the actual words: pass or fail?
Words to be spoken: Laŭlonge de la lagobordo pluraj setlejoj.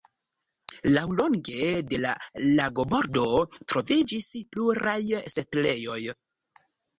fail